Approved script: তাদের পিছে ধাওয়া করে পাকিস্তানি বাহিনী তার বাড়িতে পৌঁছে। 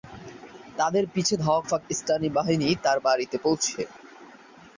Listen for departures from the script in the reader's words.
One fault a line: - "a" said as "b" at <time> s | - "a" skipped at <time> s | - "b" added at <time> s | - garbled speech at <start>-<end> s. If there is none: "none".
- "করে" skipped at 1.6 s